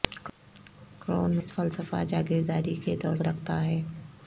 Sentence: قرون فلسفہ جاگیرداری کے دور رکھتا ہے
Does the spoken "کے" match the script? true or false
true